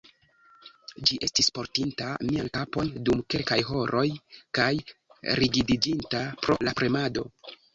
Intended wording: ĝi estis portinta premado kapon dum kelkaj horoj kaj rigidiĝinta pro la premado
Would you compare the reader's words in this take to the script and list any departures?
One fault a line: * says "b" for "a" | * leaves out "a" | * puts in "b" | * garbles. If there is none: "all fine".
* says "mian" for "premado"